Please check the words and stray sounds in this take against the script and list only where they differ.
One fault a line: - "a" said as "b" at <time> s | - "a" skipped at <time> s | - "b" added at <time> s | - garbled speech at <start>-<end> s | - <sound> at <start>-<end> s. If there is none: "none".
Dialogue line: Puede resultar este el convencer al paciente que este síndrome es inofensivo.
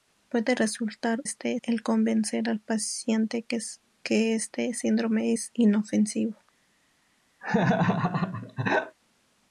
- laugh at 7.4-9.0 s